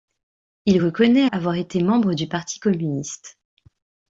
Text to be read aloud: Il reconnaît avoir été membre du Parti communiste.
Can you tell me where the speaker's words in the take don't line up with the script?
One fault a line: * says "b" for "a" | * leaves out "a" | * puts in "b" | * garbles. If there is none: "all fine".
all fine